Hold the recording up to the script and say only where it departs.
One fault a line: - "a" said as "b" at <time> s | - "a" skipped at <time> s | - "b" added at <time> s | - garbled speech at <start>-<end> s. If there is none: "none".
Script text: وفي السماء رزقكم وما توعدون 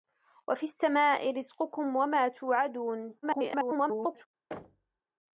- garbled speech at 3.2-4.3 s